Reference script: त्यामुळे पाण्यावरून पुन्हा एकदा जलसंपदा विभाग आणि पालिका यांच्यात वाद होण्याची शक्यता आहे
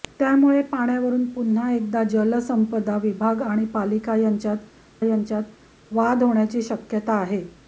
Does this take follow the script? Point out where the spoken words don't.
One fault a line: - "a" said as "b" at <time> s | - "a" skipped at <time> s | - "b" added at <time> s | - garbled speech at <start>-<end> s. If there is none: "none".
- "यांच्यात" added at 5.0 s